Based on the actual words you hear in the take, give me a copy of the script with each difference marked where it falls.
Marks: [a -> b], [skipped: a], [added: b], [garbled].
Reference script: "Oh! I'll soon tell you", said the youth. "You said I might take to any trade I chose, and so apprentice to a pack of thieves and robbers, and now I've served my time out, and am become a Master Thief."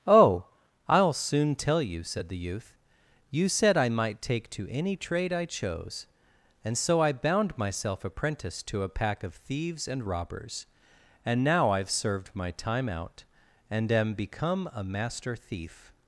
"Oh! I'll soon tell you", said the youth. "You said I might take to any trade I chose, and so [added: I bound myself] apprentice to a pack of thieves and robbers, and now I've served my time out, and am become a Master Thief."